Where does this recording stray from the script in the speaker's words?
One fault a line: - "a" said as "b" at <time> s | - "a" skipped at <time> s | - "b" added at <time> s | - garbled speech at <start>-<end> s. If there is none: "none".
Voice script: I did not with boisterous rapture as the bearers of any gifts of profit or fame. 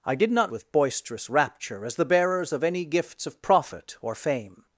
none